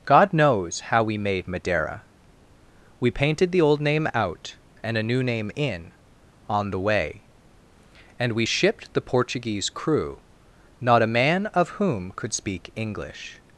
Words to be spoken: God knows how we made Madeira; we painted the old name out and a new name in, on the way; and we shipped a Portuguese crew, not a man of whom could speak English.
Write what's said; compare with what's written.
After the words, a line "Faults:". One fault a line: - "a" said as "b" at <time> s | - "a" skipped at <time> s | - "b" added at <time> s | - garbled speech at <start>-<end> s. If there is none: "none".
God knows how we made Madeira; we painted the old name out and a new name in, on the way; and we shipped the Portuguese crew, not a man of whom could speak English.
Faults:
- "a" said as "the" at 8.9 s